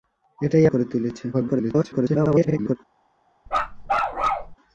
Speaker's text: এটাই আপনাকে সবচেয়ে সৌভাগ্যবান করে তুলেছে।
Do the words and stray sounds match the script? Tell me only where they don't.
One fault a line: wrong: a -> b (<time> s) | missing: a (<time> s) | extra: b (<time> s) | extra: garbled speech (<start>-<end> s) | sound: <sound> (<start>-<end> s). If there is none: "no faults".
missing: আপনাকে সবচেয়ে সৌভাগ্যবান (0.7 s)
extra: garbled speech (1.3-2.8 s)
sound: bark (3.5-4.6 s)